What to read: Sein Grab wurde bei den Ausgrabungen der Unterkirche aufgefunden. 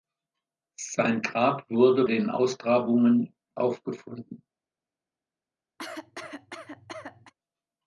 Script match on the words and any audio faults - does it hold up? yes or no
no